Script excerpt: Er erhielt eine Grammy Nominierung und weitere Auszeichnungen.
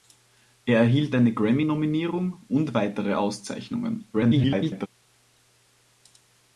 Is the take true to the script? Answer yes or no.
no